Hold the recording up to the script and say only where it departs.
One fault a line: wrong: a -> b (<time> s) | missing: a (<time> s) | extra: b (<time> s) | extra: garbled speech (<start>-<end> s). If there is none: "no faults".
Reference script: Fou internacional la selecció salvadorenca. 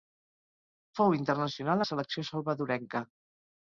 no faults